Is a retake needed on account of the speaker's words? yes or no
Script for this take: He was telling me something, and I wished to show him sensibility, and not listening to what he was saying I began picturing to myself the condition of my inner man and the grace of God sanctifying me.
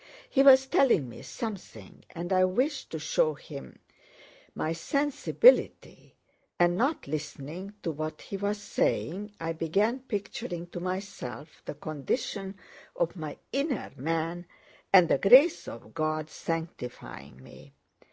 yes